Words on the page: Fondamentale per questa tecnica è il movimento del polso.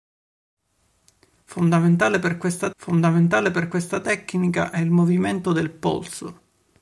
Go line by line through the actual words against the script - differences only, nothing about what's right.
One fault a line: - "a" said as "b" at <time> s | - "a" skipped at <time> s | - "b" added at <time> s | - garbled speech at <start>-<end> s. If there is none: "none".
- "fondamentale per questa" added at 2.8 s